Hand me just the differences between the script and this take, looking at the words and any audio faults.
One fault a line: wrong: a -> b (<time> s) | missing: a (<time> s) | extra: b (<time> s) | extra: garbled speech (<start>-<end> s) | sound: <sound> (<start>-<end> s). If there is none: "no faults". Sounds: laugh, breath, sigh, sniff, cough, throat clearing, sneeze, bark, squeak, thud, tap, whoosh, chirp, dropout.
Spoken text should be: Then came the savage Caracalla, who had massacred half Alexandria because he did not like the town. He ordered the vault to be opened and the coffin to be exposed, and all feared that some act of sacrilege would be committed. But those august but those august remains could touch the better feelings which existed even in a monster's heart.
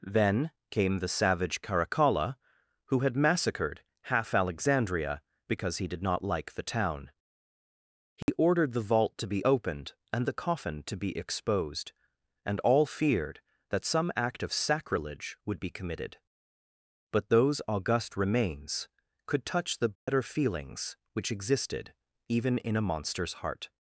sound: dropout (8.2-8.3 s)
missing: but those august (18.2 s)
sound: dropout (20.0-20.1 s)